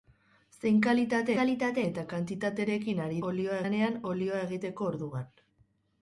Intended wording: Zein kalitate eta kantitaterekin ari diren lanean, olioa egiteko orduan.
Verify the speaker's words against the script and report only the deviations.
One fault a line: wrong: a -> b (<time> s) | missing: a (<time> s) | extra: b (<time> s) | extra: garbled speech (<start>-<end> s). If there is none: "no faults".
extra: kalitate (1.4 s)
wrong: diren -> olioa (3.3 s)